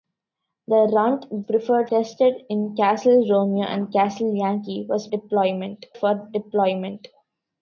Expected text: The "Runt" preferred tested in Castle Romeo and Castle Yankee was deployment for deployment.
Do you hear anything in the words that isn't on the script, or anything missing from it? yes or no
no